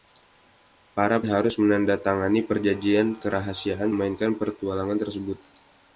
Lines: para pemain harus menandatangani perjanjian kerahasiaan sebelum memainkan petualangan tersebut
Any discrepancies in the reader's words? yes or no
yes